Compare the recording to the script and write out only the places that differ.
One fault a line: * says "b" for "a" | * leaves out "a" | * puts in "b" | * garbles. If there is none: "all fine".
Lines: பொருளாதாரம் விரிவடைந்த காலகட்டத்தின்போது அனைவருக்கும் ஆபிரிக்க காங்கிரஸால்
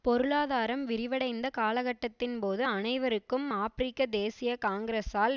* puts in "தேசிய"